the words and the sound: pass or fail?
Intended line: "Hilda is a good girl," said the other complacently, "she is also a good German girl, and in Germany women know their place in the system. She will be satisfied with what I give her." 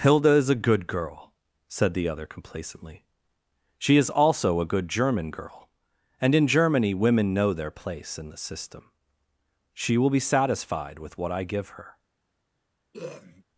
fail